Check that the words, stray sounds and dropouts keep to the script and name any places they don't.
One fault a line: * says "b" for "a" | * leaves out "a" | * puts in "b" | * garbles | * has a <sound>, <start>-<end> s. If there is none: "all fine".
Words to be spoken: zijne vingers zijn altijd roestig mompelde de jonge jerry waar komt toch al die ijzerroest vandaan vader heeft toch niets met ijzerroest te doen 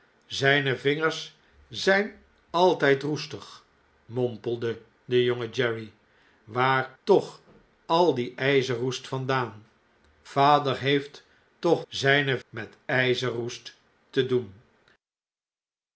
* leaves out "komt"
* says "zijne" for "niets"